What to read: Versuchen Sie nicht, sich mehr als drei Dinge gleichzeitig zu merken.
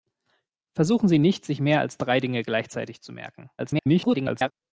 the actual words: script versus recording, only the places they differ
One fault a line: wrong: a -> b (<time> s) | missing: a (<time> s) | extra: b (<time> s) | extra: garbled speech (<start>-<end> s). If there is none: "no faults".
extra: garbled speech (3.6-4.5 s)